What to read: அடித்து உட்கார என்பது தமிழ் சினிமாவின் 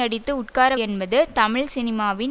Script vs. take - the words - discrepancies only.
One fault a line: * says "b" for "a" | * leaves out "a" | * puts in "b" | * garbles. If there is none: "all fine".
all fine